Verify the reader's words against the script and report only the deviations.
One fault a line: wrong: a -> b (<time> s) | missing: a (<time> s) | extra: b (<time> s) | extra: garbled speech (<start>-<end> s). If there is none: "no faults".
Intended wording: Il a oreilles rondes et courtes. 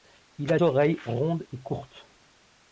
no faults